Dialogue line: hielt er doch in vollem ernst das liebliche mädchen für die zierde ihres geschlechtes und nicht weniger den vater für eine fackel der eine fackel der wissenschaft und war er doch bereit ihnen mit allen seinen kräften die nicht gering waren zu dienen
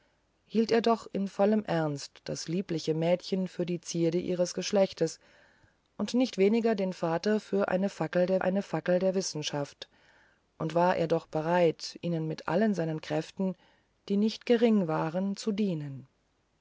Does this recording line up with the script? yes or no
yes